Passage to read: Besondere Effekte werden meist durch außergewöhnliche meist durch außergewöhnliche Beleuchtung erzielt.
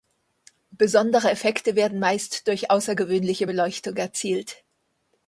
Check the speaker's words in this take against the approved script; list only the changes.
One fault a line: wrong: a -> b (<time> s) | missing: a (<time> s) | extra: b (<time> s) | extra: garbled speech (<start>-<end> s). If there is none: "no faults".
missing: meist durch außergewöhnliche (3.5 s)